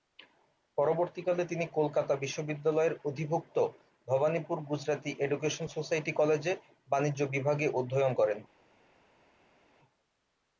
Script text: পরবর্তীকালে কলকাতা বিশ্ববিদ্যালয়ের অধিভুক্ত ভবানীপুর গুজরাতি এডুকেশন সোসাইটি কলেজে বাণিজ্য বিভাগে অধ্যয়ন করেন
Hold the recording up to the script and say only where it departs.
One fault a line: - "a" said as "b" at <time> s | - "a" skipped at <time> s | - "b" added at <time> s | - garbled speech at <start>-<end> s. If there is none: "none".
- "তিনি" added at 1.4 s